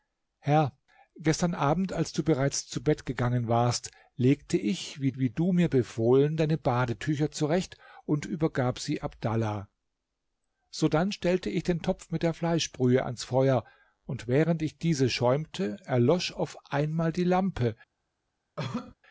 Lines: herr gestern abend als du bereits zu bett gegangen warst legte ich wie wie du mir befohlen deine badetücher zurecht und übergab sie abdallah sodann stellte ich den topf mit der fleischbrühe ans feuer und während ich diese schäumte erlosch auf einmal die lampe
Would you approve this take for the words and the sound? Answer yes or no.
no